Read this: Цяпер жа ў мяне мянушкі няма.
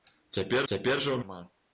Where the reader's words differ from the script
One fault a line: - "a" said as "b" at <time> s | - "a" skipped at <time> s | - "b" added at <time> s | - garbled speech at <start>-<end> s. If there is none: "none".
- "цяпер" added at 0.7 s
- "мяне мянушкі" skipped at 1.2 s